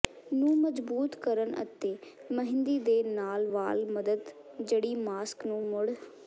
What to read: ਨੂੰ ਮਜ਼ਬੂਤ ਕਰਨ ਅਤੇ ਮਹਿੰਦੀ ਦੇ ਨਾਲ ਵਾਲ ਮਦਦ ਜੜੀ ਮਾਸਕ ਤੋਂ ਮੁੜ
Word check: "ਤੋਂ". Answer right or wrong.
wrong